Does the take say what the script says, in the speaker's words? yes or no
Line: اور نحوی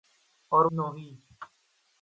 yes